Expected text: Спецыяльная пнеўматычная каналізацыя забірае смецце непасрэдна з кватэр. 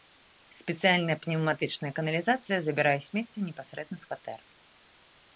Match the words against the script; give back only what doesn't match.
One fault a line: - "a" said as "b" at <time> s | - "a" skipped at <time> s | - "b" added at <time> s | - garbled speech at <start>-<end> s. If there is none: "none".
none